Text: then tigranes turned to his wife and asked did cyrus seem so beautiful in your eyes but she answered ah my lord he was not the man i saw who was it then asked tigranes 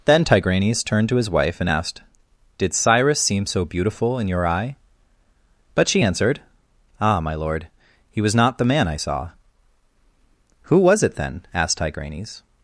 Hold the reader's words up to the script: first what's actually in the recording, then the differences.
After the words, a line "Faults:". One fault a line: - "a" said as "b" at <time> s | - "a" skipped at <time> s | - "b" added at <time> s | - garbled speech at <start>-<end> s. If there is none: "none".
then tigranes turned to his wife and asked did cyrus seem so beautiful in your eye but she answered ah my lord he was not the man i saw who was it then asked tigranes
Faults:
- "eyes" said as "eye" at 4.5 s